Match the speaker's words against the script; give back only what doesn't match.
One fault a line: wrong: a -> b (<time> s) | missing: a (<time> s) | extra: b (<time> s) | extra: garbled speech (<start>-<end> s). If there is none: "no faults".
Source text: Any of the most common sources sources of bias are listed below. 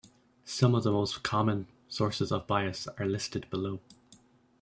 wrong: Any -> Some (0.5 s)
missing: sources (2.3 s)